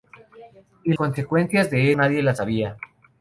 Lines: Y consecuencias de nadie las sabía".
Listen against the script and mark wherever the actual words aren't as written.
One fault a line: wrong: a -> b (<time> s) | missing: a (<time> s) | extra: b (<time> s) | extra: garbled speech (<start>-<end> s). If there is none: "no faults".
no faults